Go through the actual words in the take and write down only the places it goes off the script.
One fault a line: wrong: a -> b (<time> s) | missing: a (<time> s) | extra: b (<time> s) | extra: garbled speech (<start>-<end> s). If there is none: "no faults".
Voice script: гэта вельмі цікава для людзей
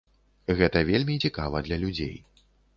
no faults